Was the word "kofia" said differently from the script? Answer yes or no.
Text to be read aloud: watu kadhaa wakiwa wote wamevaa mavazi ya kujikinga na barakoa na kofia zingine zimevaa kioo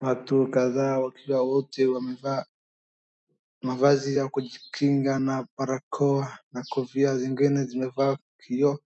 no